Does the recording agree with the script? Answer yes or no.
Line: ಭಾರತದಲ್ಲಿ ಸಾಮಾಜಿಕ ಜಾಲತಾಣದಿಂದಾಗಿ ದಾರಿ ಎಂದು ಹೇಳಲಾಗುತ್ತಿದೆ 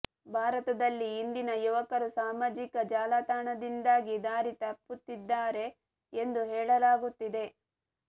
no